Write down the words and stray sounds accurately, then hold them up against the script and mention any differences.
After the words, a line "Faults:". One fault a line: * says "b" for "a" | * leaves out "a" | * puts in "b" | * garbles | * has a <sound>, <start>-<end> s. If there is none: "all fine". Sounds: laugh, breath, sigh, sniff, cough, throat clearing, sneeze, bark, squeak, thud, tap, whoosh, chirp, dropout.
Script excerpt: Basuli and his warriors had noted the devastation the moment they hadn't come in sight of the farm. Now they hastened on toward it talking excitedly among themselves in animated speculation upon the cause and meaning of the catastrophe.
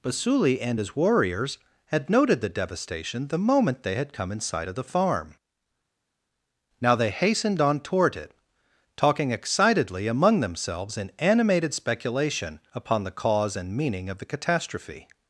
Basuli and his warriors had noted the devastation the moment they had come in sight of the farm. Now they hastened on toward it talking excitedly among themselves in animated speculation upon the cause and meaning of the catastrophe.
Faults:
* says "had" for "hadn't"